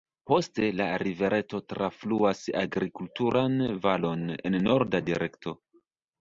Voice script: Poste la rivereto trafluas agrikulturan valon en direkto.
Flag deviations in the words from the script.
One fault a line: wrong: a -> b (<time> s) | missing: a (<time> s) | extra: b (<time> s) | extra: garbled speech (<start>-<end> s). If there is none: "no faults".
extra: norda (4.7 s)